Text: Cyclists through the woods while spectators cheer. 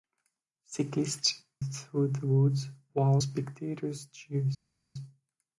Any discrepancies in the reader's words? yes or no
no